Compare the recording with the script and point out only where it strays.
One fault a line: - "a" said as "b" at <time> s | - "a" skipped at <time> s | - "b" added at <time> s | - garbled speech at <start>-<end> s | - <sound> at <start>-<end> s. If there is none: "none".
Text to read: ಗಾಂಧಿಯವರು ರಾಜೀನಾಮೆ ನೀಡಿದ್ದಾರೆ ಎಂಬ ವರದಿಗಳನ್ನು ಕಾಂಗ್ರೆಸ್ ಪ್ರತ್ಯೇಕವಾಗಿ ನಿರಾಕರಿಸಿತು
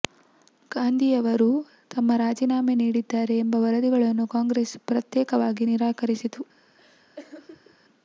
- "ತಮ್ಮ" added at 1.9 s
- laugh at 6.8-7.8 s